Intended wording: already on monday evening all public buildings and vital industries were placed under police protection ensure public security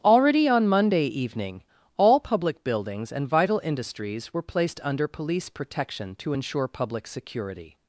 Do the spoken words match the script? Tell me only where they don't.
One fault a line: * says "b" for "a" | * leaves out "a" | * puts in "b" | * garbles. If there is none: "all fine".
* puts in "to"